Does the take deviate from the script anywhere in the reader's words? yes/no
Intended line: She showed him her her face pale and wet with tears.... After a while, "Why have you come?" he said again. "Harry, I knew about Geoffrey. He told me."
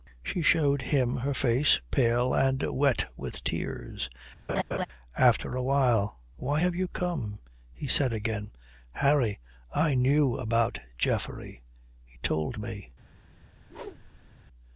yes